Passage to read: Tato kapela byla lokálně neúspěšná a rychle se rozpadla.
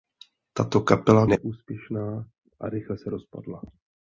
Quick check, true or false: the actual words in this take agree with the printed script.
false